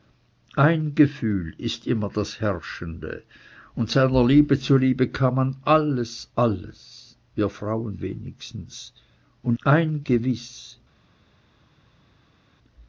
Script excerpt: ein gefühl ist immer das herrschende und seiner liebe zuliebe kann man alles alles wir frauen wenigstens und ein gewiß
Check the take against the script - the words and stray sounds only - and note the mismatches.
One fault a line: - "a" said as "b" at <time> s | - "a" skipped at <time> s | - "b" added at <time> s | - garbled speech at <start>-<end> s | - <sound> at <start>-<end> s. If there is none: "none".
none